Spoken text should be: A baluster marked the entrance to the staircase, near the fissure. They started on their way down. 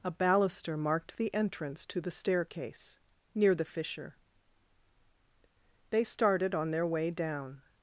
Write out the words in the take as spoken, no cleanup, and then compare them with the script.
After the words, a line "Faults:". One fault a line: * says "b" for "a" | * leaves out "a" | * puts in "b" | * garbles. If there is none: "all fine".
A baluster marked the entrance to the staircase, near the fissure. They started on their way down.
Faults:
all fine